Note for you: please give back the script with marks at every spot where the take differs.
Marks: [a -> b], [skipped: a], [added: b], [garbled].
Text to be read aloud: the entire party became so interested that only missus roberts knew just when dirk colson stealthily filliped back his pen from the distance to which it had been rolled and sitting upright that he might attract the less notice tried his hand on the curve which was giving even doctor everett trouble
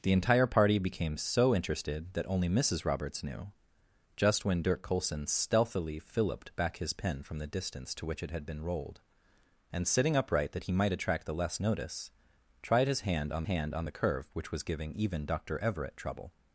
the entire party became so interested that only missus roberts knew just when dirk colson stealthily filliped back his pen from the distance to which it had been rolled and sitting upright that he might attract the less notice tried his hand on [added: hand on] the curve which was giving even doctor everett trouble